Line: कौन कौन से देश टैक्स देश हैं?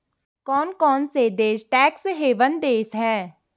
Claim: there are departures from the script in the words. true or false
true